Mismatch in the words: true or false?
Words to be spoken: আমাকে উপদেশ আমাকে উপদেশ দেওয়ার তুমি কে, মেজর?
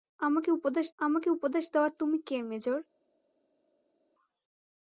false